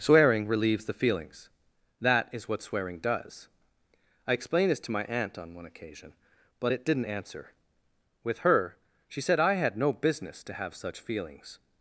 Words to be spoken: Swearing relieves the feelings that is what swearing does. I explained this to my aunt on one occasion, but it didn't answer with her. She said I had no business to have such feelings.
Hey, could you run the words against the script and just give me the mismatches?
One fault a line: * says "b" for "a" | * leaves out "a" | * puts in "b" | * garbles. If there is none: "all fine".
all fine